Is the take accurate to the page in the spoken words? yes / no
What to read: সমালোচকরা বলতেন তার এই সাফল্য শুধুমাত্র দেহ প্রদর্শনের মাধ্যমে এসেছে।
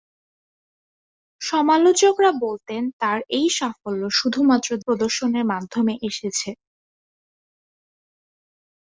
no